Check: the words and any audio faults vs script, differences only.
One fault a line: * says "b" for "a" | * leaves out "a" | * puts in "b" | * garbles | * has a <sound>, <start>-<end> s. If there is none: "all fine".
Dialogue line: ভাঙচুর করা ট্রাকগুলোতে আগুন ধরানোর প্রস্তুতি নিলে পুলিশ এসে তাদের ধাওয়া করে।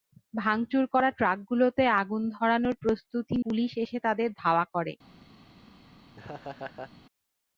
* leaves out "নিলে"
* has a laugh, 6.1-6.9 s